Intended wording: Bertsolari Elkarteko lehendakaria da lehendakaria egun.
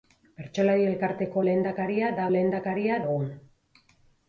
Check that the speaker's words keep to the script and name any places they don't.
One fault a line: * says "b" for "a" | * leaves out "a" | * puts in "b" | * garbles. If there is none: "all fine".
all fine